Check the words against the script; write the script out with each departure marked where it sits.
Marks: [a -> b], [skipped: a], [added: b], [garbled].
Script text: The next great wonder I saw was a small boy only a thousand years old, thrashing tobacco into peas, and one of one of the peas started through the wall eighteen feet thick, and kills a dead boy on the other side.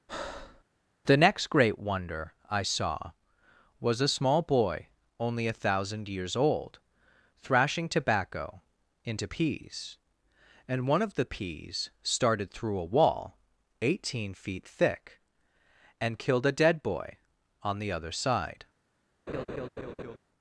The next great wonder I saw was a small boy only a thousand years old, thrashing tobacco into peas, and one of [skipped: one of] the peas started through [the -> a] wall eighteen feet thick, and [kills -> killed] a dead boy on the other side.